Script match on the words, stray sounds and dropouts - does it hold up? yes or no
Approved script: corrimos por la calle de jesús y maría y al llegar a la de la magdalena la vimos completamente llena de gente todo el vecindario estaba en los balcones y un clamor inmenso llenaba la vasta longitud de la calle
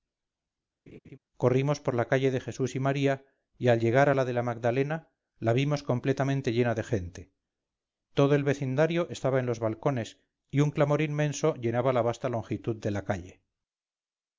no